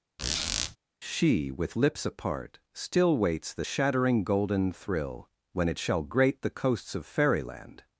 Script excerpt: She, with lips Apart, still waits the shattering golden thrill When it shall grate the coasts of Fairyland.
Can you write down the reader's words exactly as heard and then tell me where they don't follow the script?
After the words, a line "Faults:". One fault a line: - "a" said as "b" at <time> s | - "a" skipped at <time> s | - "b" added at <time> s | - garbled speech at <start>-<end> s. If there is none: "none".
She, with lips Apart, still waits the shattering golden thrill When it shall grate the coasts of Fairyland.
Faults:
none